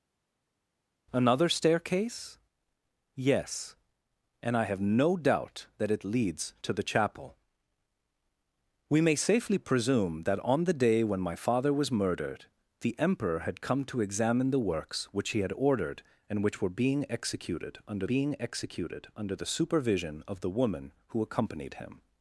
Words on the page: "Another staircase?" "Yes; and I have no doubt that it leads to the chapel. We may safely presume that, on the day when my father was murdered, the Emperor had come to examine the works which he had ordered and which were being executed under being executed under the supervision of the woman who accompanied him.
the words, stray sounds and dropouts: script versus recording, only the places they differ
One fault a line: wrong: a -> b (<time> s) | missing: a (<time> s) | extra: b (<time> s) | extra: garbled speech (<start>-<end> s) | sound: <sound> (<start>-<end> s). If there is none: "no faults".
no faults